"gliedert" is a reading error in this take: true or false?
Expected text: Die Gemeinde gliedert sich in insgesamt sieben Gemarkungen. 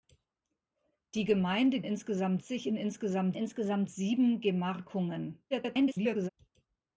true